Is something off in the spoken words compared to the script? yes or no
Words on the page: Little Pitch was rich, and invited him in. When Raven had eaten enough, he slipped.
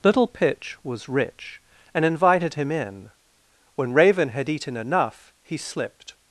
no